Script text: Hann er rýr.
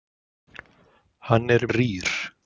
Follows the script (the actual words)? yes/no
yes